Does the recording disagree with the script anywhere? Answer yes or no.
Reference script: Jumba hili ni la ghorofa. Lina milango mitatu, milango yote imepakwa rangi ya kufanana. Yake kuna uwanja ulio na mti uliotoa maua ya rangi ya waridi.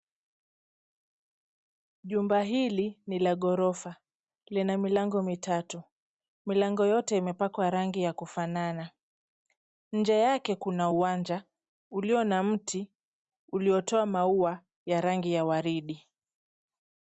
yes